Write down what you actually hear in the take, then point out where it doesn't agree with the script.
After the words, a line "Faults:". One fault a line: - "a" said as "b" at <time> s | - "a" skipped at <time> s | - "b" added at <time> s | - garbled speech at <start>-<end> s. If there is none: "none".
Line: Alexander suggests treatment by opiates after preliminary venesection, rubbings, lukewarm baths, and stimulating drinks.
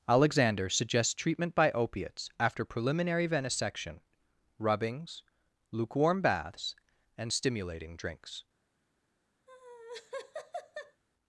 Alexander suggests treatment by opiates after preliminary venesection, rubbings, lukewarm baths, and stimulating drinks.
Faults:
none